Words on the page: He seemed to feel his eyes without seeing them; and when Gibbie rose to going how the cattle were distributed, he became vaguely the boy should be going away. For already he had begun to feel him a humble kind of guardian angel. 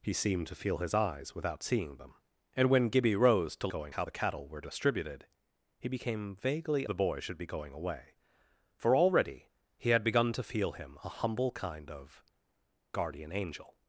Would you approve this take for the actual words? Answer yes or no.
yes